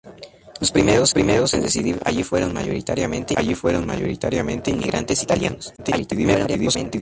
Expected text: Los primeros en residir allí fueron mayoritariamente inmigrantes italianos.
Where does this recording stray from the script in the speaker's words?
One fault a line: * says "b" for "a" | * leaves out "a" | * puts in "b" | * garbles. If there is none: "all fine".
* puts in "primeros"
* puts in "allí fueron mayoritariamente"
* garbles